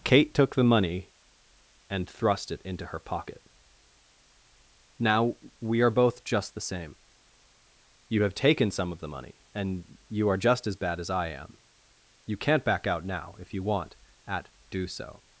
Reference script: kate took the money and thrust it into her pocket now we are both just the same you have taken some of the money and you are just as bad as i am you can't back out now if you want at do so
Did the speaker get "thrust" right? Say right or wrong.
right